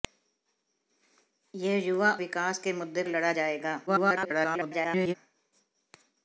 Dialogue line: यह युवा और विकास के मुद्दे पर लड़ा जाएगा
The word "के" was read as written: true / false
true